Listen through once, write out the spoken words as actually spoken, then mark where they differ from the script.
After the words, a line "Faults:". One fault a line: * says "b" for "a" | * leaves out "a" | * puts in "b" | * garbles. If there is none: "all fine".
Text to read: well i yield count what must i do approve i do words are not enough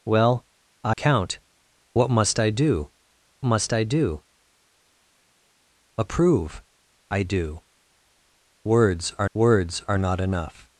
well i count what must i do must i do approve i do words are words are not enough
Faults:
* leaves out "yield"
* puts in "must i do"
* puts in "words are"